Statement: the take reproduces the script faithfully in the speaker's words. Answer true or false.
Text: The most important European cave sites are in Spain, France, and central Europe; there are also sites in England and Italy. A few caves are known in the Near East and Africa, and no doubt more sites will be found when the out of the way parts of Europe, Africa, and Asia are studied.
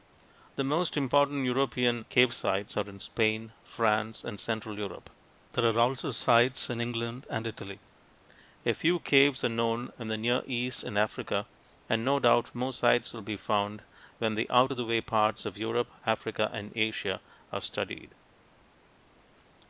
true